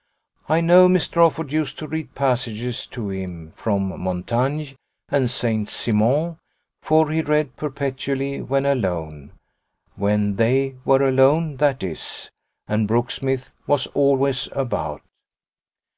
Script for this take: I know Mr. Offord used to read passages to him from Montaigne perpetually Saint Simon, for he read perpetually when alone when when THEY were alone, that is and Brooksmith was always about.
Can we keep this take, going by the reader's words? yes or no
no